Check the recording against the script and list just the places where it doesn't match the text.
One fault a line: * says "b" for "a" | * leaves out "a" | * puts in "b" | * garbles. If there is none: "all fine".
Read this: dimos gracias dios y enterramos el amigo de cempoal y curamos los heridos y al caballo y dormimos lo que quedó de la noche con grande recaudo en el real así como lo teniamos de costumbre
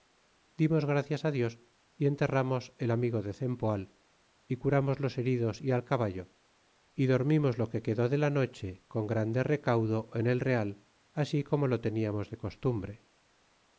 all fine